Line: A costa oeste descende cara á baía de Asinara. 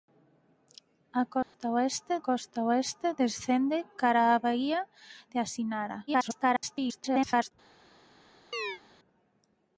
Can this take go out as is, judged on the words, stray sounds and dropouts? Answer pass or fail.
fail